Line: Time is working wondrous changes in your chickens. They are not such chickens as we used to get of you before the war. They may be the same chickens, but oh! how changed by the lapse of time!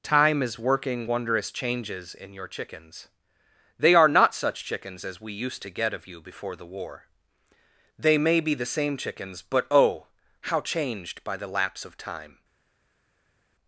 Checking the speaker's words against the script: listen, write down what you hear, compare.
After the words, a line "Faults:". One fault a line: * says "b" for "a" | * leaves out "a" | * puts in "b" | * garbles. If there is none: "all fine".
Time is working wondrous changes in your chickens. They are not such chickens as we used to get of you before the war. They may be the same chickens, but oh! how changed by the lapse of time!
Faults:
all fine